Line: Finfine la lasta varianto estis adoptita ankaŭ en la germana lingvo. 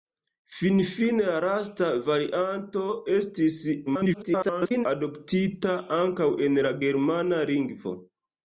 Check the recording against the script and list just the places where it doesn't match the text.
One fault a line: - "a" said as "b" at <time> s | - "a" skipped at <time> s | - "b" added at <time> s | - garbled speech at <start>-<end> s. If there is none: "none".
- garbled speech at 3.9-4.9 s